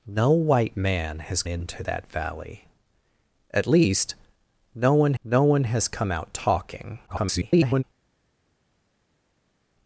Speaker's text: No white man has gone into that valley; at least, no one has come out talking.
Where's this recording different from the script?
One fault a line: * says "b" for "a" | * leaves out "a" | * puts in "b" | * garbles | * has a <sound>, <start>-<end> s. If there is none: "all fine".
* leaves out "gone"
* puts in "no one"
* garbles